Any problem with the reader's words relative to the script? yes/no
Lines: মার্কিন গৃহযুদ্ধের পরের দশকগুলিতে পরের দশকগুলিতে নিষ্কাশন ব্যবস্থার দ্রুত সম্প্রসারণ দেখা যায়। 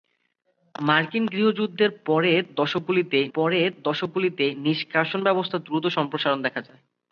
no